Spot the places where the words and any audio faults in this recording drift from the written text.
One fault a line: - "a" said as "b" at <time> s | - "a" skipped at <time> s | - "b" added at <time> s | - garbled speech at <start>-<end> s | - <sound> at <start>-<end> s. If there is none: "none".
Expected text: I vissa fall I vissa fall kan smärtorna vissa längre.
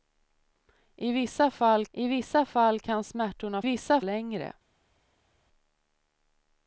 none